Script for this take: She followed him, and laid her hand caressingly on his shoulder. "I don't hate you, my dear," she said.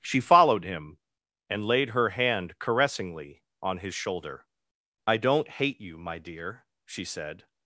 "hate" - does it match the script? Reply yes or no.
yes